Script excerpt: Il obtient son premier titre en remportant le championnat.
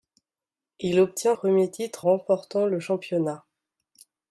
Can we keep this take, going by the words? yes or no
no